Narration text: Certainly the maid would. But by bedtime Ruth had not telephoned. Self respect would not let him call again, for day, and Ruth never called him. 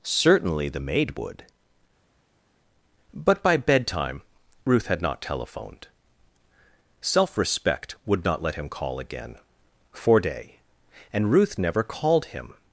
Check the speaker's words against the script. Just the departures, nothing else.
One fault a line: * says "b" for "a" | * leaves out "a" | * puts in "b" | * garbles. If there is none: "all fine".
all fine